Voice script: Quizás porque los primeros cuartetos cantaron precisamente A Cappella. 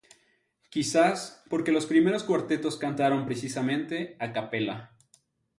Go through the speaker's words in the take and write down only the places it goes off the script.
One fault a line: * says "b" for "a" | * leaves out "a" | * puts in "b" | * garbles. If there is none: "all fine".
all fine